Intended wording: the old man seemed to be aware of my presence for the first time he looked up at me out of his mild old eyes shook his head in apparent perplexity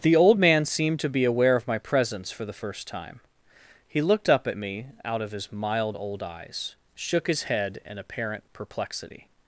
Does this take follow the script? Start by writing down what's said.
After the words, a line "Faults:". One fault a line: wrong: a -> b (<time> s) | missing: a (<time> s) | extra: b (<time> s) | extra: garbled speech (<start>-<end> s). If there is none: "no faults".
the old man seemed to be aware of my presence for the first time he looked up at me out of his mild old eyes shook his head in apparent perplexity
Faults:
no faults